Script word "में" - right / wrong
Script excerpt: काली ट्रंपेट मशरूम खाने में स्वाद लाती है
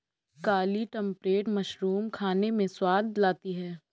right